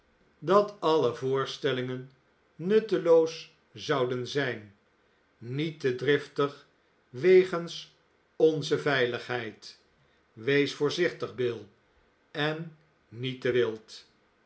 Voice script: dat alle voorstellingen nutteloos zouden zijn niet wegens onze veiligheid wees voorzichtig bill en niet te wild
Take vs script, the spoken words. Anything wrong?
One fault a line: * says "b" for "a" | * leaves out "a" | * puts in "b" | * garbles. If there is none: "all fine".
* puts in "te driftig"